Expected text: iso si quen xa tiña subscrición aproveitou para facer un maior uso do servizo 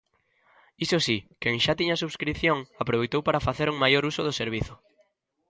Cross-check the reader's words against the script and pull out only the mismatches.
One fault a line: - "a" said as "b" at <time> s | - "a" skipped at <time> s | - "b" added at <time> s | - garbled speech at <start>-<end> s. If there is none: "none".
none